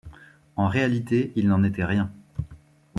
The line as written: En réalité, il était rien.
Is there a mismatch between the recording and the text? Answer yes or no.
yes